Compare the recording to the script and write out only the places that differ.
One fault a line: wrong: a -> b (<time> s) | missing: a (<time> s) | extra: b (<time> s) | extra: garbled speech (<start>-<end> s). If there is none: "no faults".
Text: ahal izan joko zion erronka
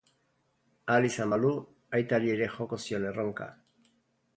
extra: balu aitari ere (1.3 s)